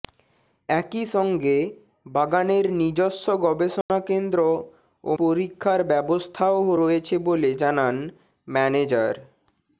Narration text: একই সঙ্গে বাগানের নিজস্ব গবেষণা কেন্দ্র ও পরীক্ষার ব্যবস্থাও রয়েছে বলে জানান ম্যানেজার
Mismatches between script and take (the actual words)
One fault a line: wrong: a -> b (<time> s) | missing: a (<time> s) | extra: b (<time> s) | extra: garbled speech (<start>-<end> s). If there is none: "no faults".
no faults